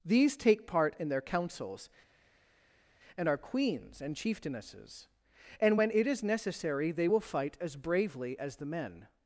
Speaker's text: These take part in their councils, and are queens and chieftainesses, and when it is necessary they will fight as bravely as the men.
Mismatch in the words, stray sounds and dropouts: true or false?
false